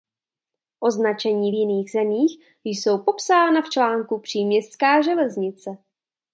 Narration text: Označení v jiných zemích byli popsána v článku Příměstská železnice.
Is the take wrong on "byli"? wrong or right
wrong